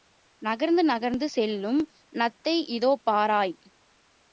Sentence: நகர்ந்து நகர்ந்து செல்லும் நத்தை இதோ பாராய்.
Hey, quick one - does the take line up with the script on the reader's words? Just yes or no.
yes